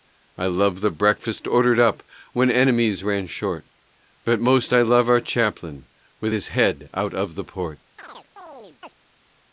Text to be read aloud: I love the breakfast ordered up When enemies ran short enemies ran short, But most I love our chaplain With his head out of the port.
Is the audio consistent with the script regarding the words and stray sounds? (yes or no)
no